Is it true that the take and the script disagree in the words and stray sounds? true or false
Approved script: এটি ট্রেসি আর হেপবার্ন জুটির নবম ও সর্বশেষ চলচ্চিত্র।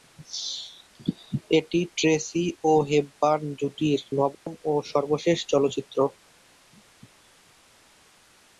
true